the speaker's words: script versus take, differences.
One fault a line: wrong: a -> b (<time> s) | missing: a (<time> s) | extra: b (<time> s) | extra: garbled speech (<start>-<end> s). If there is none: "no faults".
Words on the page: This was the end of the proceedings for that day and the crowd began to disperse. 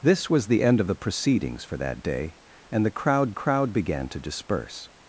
extra: crowd (3.3 s)